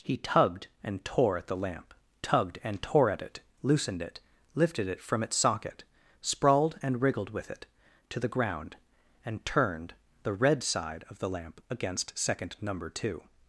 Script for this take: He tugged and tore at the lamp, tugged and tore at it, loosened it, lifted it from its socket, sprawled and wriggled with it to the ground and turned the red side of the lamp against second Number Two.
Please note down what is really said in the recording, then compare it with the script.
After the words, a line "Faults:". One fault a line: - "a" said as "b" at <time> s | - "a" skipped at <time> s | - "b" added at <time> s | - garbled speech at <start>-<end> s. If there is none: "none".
He tugged and tore at the lamp, tugged and tore at it, loosened it, lifted it from its socket, sprawled and wriggled with it to the ground and turned the red side of the lamp against second Number Two.
Faults:
none